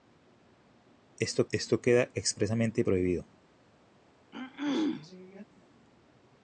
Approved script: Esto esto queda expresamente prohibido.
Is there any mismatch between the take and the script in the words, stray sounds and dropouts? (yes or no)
yes